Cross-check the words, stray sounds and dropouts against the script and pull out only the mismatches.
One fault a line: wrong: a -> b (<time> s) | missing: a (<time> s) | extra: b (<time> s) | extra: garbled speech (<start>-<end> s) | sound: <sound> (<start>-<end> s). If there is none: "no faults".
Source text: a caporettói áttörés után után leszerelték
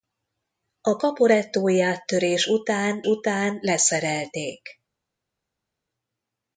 no faults